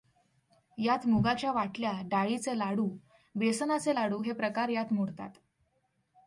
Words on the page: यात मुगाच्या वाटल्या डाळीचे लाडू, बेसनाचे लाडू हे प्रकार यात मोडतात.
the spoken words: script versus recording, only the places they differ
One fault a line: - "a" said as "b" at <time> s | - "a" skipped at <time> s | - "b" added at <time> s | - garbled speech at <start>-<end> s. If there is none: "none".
none